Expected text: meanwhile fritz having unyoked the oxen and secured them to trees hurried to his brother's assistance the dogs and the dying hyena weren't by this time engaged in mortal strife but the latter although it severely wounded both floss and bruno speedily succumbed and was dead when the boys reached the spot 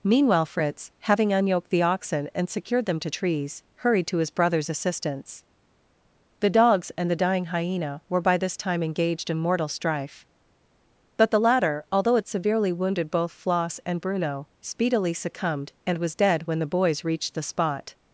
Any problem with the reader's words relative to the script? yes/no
yes